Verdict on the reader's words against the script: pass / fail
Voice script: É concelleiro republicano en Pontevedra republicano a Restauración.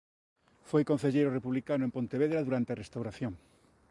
fail